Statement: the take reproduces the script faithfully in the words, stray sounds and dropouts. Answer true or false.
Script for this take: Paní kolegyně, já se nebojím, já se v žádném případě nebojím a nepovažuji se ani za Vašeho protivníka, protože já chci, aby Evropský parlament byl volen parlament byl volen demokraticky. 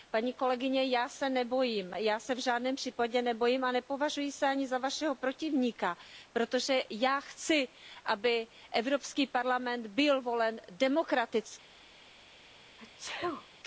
false